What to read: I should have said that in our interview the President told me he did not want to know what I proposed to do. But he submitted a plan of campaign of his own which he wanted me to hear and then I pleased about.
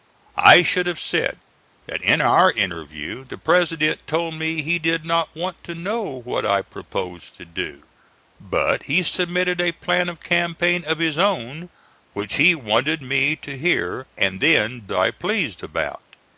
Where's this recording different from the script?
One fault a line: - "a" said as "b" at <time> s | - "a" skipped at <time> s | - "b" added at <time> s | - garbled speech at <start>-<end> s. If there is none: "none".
none